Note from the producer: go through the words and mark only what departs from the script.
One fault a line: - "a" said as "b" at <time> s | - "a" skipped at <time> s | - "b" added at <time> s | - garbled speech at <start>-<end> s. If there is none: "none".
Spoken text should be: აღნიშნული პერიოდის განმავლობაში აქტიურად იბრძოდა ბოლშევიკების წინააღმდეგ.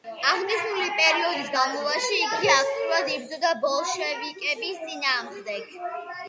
- "იგი" added at 2.2 s